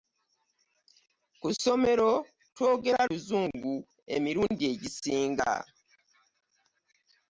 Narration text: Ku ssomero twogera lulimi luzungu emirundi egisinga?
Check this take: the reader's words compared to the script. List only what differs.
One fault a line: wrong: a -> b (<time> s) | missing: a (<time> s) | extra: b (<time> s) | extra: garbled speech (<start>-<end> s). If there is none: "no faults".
missing: lulimi (3.0 s)